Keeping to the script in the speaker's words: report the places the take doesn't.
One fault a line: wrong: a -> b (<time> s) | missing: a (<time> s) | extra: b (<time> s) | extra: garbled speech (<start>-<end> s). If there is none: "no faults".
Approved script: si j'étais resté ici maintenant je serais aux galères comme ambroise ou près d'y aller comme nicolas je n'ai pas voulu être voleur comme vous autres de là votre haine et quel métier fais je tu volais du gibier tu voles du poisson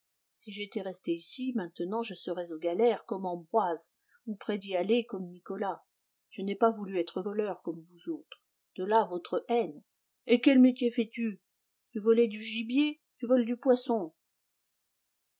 wrong: je -> tu (11.1 s)